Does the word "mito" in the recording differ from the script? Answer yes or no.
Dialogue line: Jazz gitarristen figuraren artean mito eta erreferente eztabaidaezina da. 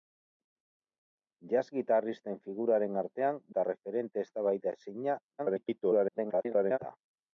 yes